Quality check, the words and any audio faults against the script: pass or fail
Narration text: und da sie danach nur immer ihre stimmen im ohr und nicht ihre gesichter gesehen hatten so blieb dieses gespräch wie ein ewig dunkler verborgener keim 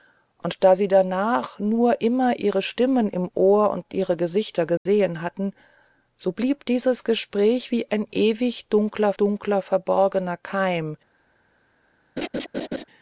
fail